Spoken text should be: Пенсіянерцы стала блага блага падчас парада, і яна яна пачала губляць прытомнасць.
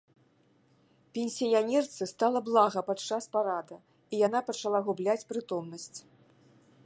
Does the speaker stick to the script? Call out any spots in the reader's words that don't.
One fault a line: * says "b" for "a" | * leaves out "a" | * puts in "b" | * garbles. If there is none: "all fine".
* leaves out "блага"
* leaves out "яна"